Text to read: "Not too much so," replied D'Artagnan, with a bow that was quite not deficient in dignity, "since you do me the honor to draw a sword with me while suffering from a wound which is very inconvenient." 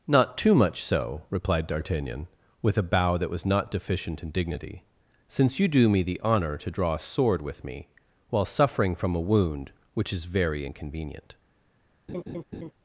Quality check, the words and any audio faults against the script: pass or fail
fail